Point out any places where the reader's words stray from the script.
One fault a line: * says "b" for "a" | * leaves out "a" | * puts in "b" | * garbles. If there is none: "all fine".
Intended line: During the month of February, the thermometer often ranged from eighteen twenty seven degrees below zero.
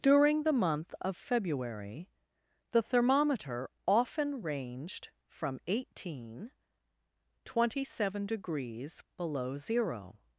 all fine